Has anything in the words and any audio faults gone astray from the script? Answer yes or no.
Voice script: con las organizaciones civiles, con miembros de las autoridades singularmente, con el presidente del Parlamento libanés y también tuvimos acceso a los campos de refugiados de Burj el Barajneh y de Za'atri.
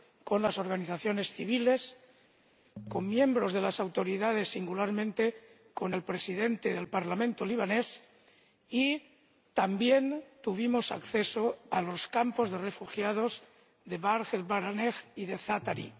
no